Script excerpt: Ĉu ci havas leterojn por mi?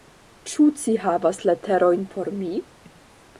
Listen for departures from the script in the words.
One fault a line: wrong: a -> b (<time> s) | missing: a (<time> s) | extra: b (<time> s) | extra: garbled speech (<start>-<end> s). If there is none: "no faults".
no faults